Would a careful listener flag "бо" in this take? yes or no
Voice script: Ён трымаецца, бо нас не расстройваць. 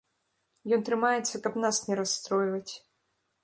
yes